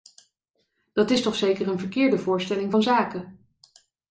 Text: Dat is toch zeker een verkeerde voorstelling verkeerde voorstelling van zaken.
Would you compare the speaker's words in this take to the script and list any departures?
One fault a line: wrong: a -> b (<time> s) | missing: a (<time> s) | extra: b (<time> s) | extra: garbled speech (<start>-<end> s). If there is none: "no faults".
missing: verkeerde voorstelling (2.7 s)